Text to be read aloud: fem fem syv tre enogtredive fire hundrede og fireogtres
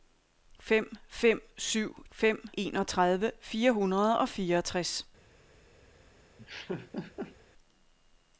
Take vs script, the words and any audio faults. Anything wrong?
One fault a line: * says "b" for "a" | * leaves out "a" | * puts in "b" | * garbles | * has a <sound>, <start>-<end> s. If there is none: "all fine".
* says "fem" for "tre"
* has a laugh, 6.4-7.4 s